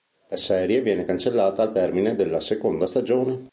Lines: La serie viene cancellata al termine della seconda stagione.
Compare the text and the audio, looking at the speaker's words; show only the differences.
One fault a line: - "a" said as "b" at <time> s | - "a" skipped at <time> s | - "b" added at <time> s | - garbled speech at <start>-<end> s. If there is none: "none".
none